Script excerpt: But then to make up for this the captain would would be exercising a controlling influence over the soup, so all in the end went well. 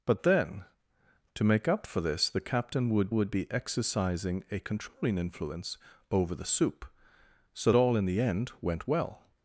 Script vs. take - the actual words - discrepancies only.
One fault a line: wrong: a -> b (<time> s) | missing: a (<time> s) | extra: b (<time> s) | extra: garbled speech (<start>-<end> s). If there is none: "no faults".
no faults